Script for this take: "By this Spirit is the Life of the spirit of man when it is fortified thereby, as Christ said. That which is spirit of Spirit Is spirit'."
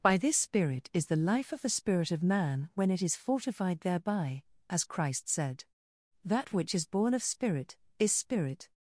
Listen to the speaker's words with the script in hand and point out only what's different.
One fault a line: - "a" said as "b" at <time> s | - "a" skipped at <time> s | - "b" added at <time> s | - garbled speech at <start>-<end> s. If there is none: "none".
- "spirit" said as "born" at 6.9 s